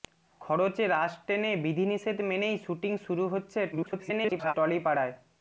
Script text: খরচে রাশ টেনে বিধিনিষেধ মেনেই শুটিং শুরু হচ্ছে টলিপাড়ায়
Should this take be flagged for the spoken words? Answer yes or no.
yes